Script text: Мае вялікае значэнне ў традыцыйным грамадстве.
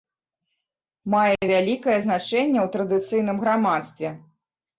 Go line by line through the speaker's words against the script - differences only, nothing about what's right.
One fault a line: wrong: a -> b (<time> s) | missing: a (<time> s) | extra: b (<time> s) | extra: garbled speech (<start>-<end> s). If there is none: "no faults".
no faults